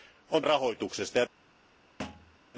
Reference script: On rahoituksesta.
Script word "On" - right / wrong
right